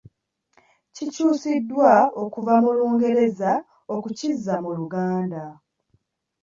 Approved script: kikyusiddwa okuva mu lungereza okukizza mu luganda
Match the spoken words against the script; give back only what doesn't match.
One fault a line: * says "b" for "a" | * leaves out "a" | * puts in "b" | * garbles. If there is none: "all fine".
all fine